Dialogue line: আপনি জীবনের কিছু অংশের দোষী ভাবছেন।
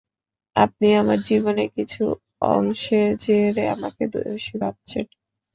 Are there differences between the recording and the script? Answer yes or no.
yes